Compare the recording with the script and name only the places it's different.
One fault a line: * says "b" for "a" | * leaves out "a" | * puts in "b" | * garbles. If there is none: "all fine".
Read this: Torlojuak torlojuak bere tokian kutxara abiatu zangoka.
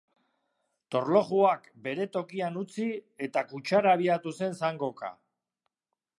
* leaves out "torlojuak"
* puts in "utzi eta"
* puts in "zen"